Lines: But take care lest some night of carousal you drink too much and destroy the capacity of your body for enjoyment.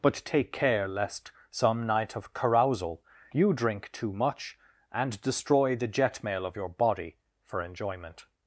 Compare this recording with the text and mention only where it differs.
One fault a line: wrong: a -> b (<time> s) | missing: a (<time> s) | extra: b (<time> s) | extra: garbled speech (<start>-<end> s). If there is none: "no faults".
wrong: capacity -> jetmail (5.9 s)